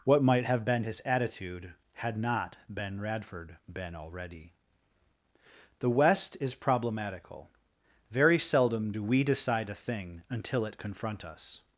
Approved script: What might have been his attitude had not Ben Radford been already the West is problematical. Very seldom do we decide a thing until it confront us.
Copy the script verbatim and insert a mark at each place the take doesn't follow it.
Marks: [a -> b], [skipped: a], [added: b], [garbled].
What might have been his attitude had not Ben Radford been already the West is problematical. Very seldom do we decide a thing until it confront us.